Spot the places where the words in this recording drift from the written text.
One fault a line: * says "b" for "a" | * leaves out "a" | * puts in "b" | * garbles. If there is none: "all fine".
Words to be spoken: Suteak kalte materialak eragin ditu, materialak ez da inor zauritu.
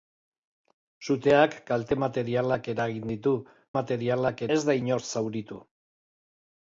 all fine